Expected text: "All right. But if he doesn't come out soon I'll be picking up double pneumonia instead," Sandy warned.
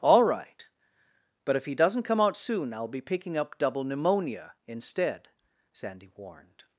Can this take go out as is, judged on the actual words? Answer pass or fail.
pass